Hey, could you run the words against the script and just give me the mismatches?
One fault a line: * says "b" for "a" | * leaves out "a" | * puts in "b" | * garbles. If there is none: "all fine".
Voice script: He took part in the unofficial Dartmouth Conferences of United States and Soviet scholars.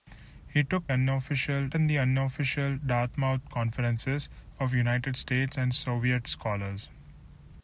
* says "unofficial" for "part"